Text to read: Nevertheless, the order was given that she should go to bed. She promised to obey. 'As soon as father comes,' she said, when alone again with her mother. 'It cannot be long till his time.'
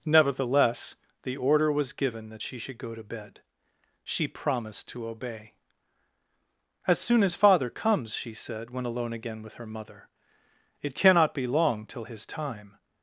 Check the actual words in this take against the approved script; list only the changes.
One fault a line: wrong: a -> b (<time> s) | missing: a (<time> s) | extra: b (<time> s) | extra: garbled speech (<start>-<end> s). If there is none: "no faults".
no faults